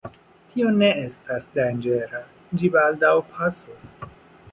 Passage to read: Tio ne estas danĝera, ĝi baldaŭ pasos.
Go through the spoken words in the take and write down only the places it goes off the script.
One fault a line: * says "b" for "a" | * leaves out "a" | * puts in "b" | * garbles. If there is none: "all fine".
all fine